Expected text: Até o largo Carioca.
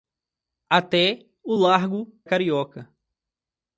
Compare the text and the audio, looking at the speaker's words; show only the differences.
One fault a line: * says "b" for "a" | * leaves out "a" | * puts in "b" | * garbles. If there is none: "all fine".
all fine